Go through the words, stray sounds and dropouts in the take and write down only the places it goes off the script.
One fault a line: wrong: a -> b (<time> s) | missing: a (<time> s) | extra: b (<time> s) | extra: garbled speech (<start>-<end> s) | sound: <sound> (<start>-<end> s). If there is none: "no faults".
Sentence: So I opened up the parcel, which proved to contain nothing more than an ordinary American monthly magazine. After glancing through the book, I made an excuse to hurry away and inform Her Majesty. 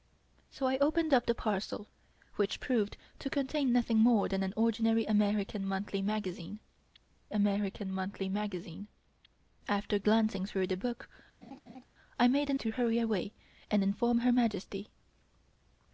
extra: American monthly magazine (7.3 s)
sound: laugh (11.4-11.8 s)
missing: excuse (12.6 s)